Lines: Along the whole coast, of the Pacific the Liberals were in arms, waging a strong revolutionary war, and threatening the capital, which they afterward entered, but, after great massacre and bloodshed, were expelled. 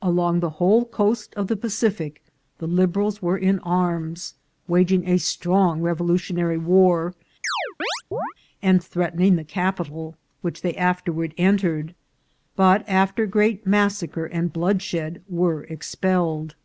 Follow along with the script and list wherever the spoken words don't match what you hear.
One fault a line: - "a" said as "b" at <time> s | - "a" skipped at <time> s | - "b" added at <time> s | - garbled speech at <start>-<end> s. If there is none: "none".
none